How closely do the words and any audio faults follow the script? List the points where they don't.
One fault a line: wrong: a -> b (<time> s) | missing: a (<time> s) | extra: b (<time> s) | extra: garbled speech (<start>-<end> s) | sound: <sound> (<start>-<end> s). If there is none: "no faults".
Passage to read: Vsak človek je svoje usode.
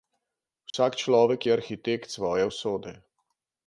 sound: dropout (0.7-0.7 s)
extra: arhitekt (1.5 s)